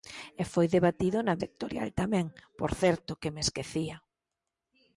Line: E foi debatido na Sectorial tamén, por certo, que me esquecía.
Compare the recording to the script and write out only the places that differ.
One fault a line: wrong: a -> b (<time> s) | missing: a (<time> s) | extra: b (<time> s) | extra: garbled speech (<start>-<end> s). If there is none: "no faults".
no faults